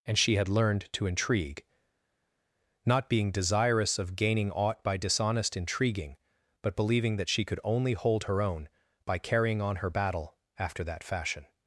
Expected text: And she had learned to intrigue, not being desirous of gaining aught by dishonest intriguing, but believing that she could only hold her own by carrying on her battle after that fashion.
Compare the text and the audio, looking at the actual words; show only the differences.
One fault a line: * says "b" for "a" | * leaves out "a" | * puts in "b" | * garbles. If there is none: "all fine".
all fine